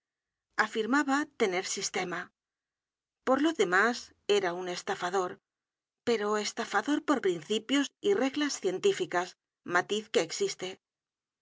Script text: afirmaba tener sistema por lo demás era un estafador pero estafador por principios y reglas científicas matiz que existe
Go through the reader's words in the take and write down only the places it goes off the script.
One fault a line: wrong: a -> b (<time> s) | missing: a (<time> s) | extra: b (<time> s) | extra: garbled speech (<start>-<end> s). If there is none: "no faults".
no faults